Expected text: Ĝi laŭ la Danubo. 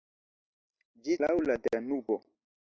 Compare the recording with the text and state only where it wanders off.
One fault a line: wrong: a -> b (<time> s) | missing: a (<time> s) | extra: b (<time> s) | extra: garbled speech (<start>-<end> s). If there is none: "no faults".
no faults